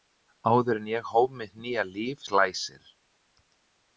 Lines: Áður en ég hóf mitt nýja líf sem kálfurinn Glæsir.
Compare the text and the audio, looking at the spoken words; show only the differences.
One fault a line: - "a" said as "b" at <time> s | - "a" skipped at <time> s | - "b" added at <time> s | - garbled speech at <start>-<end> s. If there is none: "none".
- "sem kálfurinn" skipped at 2.2 s